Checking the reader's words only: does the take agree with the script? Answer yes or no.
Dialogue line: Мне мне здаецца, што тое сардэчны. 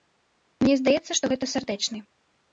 no